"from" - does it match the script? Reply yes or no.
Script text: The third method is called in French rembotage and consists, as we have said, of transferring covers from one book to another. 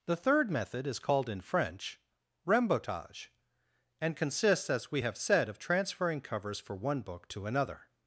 no